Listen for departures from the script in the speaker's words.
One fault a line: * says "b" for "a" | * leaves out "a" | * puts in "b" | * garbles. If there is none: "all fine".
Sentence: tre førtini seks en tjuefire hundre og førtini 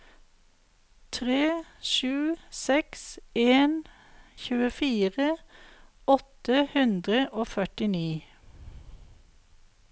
* says "sju" for "førtini"
* puts in "åtte"